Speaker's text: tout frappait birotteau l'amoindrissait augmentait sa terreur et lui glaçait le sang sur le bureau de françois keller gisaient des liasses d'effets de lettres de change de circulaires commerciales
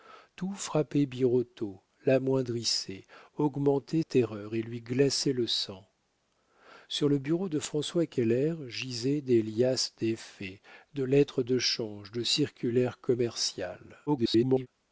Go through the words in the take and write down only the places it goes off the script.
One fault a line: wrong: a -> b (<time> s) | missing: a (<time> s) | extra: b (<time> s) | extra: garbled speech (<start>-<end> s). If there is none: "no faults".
missing: sa (4.0 s)
extra: garbled speech (14.1-14.7 s)